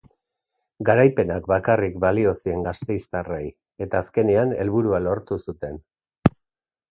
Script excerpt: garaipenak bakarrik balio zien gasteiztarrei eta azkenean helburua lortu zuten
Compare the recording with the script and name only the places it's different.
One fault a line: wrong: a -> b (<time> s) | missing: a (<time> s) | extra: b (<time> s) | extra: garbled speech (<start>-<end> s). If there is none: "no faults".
no faults